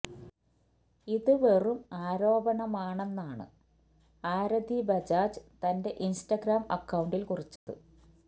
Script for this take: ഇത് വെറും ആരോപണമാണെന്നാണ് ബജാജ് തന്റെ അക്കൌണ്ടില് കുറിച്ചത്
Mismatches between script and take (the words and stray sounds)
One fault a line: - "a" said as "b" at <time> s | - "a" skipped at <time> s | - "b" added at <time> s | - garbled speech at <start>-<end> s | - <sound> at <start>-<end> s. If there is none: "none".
- "ആരതി" added at 4.2 s
- "ഇന്സ്റ്റഗ്രാം" added at 6.0 s
- dropout at 7.6-7.7 s